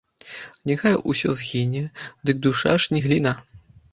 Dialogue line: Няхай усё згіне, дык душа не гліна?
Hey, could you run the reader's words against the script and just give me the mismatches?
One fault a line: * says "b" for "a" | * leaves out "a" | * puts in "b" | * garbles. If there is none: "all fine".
* puts in "ж"